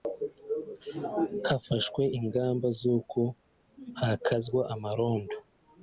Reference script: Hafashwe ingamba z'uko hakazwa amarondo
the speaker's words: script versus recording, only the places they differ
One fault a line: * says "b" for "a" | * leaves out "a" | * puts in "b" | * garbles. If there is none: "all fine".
all fine